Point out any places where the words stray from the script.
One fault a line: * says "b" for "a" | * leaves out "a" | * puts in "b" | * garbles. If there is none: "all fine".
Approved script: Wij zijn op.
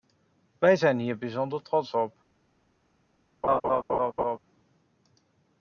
* puts in "hier bijzonder trots"